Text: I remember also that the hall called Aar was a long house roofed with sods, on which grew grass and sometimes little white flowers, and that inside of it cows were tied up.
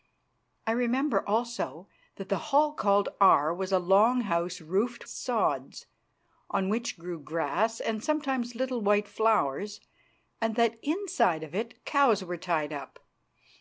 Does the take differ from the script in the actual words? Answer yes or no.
yes